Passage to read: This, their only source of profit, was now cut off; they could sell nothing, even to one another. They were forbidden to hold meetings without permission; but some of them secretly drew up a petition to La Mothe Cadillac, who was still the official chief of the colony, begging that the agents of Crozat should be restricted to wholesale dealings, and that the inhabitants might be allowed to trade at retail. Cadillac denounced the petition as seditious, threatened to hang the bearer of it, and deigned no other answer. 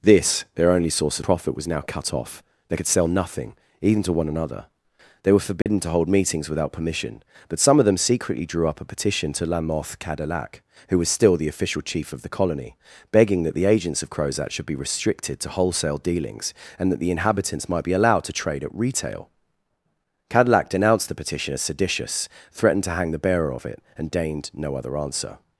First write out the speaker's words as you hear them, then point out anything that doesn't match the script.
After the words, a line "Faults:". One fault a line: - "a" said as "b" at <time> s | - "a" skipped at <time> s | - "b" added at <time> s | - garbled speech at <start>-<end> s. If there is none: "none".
This, their only source profit, was now cut off; they could sell nothing, even to one another. They were forbidden to hold meetings without permission; but some of them secretly drew up a petition to La Mothe Cadillac, who was still the official chief of the colony, begging that the agents of Crozat should be restricted to wholesale dealings, and that the inhabitants might be allowed to trade at retail. Cadillac denounced the petition as seditious, threatened to hang the bearer of it, and deigned no other answer.
Faults:
- "of" skipped at 1.2 s